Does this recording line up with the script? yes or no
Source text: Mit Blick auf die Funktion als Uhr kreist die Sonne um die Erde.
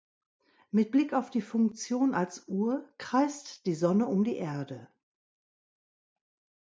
yes